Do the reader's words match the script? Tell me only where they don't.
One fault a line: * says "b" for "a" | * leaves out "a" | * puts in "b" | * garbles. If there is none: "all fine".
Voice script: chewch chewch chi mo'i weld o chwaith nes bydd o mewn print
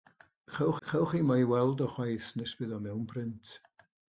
all fine